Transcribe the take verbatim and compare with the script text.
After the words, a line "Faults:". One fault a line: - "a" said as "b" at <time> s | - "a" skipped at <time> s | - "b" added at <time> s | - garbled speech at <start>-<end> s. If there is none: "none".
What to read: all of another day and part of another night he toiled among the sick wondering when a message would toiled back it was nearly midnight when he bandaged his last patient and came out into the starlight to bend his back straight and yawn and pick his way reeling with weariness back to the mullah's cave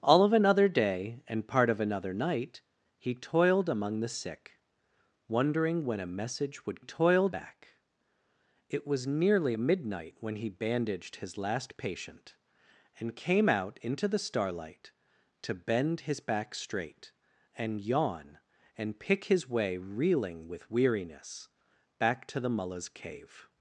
all of another day and part of another night he toiled among the sick wondering when a message would toiled back it was nearly midnight when he bandaged his last patient and came out into the starlight to bend his back straight and yawn and pick his way reeling with weariness back to the mullah's cave
Faults:
none